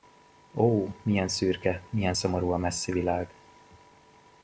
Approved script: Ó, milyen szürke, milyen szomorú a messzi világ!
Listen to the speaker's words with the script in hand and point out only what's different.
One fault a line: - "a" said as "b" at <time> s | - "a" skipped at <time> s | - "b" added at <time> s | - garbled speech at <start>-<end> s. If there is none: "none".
none